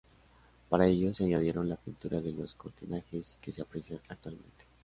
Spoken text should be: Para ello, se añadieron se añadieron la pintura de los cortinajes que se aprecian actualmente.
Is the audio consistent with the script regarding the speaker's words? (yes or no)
no